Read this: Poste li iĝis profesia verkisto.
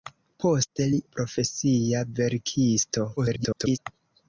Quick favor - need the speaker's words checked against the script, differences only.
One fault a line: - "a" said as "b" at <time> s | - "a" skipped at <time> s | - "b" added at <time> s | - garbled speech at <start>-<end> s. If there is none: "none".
- "iĝis" skipped at 1.0 s
- garbled speech at 3.2-3.8 s